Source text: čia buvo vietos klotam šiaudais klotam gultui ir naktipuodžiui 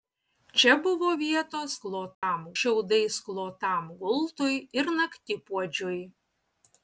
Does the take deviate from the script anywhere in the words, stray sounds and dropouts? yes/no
yes